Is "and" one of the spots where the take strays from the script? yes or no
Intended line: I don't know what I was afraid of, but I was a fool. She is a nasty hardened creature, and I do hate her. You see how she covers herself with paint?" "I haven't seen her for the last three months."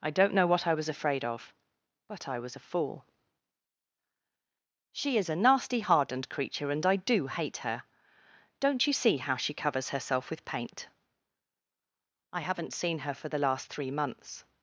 no